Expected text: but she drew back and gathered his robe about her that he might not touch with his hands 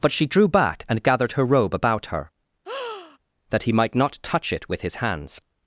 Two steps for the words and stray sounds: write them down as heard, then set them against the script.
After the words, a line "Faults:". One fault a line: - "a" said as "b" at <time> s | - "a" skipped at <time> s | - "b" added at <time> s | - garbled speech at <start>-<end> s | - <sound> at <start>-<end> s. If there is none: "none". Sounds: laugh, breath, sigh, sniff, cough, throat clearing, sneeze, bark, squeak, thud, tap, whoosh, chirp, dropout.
but she drew back and gathered her robe about her that he might not touch it with his hands
Faults:
- "his" said as "her" at 1.3 s
- breath at 2.7-3.2 s
- "it" added at 4.5 s